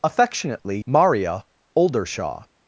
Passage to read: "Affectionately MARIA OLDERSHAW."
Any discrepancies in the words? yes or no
no